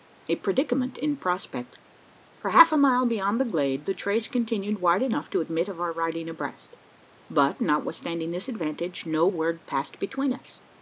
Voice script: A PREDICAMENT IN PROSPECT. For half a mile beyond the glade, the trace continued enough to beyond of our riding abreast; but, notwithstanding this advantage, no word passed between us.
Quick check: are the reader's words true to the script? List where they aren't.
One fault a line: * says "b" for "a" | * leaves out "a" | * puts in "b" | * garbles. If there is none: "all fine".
* puts in "wide"
* says "admit" for "beyond"